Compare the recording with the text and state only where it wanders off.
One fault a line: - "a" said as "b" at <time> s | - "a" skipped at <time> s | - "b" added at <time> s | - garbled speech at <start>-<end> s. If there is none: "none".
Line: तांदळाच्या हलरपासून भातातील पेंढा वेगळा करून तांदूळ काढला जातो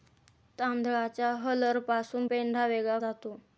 - "भातातील" skipped at 2.3 s
- "करून तांदूळ काढला" skipped at 3.0 s